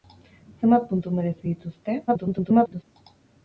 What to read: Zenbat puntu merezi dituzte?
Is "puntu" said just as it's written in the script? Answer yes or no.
yes